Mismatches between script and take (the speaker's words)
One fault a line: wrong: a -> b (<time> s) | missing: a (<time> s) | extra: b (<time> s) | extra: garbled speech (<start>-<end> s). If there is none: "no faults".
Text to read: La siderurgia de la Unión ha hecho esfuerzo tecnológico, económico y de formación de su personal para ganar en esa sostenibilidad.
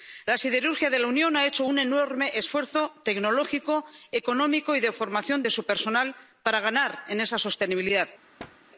extra: un enorme (1.6 s)